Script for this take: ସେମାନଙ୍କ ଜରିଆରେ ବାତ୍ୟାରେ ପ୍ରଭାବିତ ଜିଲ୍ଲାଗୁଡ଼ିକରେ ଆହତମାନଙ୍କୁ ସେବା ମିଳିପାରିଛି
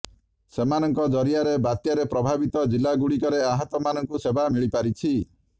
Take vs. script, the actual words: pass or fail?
pass